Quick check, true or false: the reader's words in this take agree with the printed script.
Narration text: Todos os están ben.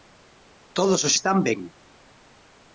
true